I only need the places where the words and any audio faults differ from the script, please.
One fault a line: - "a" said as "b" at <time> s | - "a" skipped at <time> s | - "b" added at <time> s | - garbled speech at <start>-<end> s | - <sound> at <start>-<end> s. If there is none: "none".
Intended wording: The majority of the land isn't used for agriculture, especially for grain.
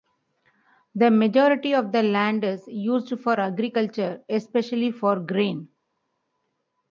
- "isn't" said as "is" at 2.4 s